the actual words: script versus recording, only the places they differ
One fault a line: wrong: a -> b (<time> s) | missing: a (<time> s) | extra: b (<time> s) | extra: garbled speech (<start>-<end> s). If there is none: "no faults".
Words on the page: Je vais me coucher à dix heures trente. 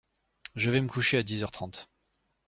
no faults